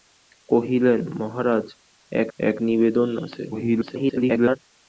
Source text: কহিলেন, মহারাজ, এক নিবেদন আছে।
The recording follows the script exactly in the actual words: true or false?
false